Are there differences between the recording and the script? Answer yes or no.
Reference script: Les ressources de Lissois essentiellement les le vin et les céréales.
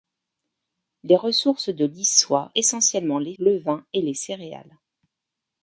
no